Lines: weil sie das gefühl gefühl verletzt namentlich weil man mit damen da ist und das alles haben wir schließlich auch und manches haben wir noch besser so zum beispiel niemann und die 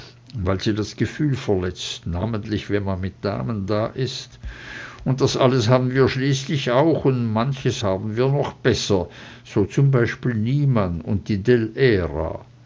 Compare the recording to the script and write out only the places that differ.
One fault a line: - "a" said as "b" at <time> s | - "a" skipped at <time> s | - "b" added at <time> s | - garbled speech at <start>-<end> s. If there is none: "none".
- "gefühl" skipped at 1.4 s
- "weil" said as "wenn" at 2.7 s